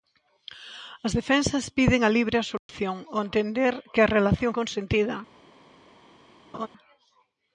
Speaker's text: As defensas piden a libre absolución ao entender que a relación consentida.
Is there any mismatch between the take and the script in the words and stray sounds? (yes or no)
yes